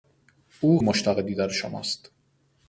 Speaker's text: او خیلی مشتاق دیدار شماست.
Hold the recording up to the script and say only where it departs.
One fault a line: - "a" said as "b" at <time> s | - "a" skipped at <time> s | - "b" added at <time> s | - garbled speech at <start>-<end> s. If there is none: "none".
- "خیلی" skipped at 0.8 s